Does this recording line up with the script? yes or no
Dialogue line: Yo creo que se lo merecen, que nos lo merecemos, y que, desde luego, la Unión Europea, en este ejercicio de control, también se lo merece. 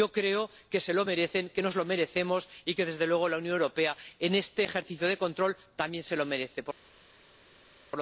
yes